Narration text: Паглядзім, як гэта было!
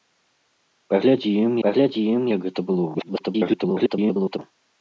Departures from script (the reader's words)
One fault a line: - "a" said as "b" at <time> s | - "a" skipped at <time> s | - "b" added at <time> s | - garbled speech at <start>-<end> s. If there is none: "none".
- "паглядзім" added at 1.7 s
- garbled speech at 2.9-4.4 s